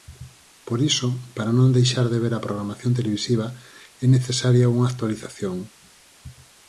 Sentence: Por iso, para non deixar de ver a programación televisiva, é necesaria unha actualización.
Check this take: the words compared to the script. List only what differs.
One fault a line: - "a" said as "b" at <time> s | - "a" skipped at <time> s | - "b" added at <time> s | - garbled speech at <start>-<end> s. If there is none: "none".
none